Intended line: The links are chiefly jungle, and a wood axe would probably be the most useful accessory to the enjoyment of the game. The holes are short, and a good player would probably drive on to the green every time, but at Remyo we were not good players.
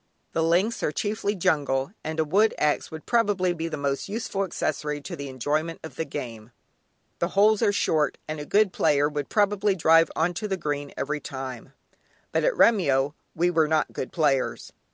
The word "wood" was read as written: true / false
true